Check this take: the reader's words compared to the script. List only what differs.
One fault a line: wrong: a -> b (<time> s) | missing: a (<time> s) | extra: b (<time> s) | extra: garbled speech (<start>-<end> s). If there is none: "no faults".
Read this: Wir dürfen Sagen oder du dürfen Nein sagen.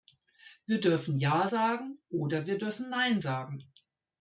extra: Ja (1.2 s)
wrong: du -> wir (2.4 s)